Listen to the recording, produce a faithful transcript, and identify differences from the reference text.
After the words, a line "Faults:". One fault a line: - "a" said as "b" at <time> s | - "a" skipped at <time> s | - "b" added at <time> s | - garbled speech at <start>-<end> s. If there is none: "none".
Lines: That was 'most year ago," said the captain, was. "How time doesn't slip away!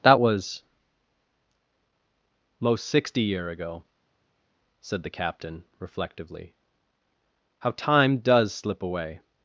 That was 'most sixty year ago," said the captain, reflectively. "How time does slip away!
Faults:
- "sixty" added at 2.8 s
- "was" said as "reflectively" at 5.8 s
- "doesn't" said as "does" at 8.2 s